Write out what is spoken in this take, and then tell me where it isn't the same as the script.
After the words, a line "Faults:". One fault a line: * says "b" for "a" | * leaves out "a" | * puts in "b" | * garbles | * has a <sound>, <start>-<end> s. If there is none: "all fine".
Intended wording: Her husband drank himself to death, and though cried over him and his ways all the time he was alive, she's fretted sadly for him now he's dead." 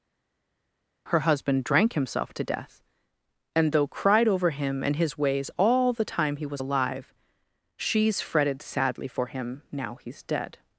Her husband drank himself to death, and though cried over him and his ways all the time he was alive, she's fretted sadly for him now he's dead."
Faults:
all fine